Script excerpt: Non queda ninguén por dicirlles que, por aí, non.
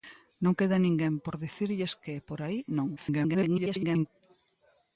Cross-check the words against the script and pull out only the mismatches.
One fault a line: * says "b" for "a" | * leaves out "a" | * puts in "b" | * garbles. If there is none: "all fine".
* garbles